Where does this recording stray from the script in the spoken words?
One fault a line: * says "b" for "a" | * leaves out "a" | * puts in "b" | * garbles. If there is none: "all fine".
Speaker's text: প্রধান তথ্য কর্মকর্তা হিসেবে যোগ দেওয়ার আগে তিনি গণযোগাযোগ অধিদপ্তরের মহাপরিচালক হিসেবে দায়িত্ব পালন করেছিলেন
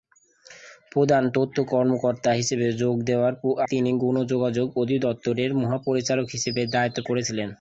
* leaves out "আগে"
* leaves out "পালন"